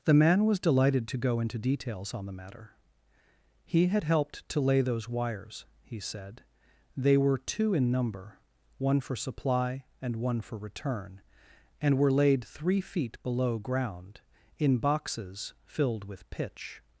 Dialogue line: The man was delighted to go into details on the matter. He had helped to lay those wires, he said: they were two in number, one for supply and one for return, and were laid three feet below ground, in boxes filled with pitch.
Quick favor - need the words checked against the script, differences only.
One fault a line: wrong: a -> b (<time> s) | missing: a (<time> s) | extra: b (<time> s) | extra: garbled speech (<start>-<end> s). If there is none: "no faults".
no faults